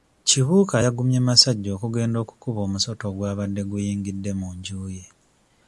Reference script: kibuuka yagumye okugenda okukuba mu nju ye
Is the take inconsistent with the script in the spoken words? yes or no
yes